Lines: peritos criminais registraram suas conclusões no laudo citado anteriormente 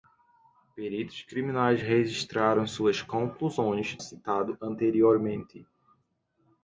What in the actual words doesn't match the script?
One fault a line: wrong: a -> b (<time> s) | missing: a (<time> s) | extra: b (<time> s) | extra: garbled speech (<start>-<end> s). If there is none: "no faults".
missing: no laudo (4.0 s)